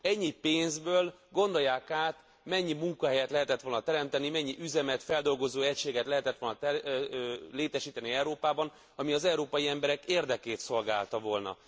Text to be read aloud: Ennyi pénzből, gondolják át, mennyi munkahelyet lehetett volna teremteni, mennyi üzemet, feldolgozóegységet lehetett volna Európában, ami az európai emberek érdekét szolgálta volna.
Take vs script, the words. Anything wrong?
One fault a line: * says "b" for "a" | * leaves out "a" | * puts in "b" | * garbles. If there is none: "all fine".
* puts in "létesíteni"